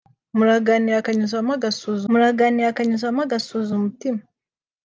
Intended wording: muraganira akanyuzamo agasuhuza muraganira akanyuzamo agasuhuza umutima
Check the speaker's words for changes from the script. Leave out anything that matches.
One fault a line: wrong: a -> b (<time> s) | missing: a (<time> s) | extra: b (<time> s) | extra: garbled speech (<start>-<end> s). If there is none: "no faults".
no faults